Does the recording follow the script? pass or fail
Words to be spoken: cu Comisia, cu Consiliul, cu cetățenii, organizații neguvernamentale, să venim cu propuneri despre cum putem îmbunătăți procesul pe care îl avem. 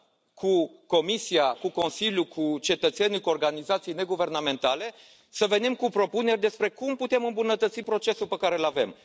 fail